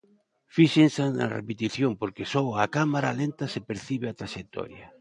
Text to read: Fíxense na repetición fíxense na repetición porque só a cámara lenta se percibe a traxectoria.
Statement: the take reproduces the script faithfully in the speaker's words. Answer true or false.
false